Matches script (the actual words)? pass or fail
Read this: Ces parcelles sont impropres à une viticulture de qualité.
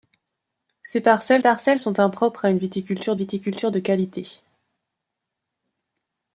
fail